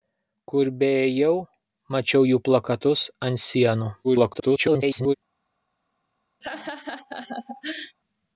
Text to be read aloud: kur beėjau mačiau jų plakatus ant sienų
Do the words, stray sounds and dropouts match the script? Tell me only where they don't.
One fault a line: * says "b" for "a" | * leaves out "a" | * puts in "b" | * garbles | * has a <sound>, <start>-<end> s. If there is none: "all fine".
* garbles
* has a laugh, 6.4-8.0 s